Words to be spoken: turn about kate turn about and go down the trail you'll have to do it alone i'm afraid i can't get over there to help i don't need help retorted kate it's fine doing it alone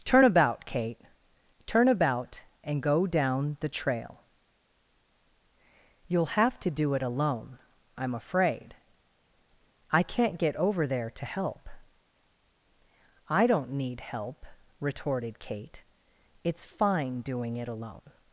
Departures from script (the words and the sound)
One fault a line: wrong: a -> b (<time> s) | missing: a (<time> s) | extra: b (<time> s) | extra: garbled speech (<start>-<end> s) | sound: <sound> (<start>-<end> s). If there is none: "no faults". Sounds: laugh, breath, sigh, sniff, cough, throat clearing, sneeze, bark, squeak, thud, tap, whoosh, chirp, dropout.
no faults